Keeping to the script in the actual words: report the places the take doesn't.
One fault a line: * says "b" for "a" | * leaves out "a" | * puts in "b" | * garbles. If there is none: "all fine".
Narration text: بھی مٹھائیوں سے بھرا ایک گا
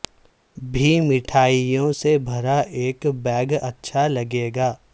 * puts in "بیگ اچھا لگے"